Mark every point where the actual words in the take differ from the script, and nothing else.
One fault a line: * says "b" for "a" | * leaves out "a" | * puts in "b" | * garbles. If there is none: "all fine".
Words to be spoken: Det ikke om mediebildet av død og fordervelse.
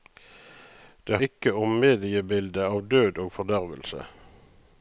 all fine